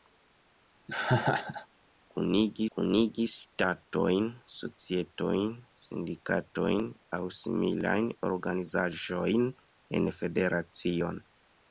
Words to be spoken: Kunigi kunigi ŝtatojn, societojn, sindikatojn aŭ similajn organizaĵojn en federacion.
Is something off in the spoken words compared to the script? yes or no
no